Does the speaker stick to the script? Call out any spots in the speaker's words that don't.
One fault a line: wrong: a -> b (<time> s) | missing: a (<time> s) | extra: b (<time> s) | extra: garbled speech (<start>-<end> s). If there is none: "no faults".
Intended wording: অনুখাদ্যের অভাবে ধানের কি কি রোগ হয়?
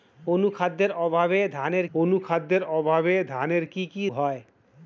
extra: অনুখাদ্যের অভাবে ধানের (1.9 s)
missing: রোগ (4.0 s)